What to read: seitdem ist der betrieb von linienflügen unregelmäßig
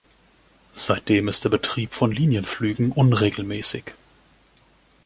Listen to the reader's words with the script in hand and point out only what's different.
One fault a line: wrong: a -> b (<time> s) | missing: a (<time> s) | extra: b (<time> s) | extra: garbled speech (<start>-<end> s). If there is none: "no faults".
no faults